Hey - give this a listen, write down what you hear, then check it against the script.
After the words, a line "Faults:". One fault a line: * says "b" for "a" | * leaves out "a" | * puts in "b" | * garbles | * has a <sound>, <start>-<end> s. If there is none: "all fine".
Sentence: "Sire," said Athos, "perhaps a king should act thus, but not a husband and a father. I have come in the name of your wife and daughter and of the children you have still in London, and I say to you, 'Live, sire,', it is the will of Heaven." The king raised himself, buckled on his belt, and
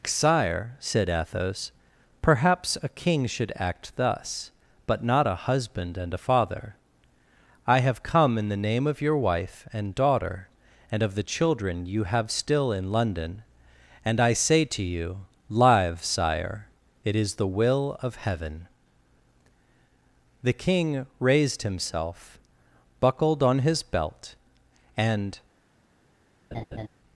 "Sire," said Athos, "perhaps a king should act thus, but not a husband and a father. I have come in the name of your wife and daughter and of the children you have still in London, and I say to you, 'Live, sire,', it is the will of Heaven." The king raised himself, buckled on his belt, and
Faults:
* has a laugh, 26.5-26.9 s